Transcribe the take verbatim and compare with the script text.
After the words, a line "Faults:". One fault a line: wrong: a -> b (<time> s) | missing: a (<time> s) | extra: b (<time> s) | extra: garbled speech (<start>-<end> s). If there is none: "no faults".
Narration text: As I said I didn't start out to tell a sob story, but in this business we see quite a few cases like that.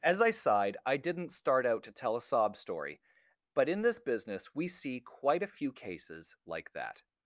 As I sighed I didn't start out to tell a sob story, but in this business we see quite a few cases like that.
Faults:
wrong: said -> sighed (0.3 s)